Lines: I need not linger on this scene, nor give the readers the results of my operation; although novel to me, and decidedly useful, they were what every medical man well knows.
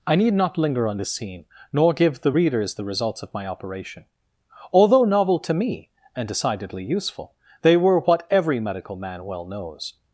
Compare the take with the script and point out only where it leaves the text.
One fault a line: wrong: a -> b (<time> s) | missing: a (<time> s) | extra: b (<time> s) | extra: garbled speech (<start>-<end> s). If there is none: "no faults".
no faults